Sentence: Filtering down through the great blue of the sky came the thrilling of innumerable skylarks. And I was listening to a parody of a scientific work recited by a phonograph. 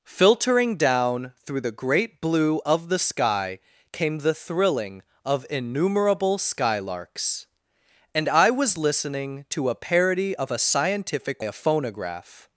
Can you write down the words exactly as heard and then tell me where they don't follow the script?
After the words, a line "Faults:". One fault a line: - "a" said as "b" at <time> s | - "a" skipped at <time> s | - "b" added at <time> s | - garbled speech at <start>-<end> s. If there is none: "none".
Filtering down through the great blue of the sky came the thrilling of innumerable skylarks. And I was listening to a parody of a scientific a phonograph.
Faults:
- "work recited by" skipped at 11.4 s